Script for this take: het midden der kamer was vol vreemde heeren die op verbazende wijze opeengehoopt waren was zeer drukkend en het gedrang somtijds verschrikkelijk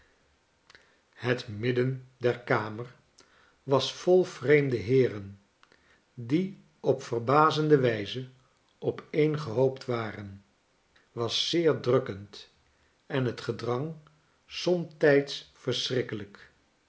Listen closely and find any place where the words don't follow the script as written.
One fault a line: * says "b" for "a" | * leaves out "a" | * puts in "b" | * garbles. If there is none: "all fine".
all fine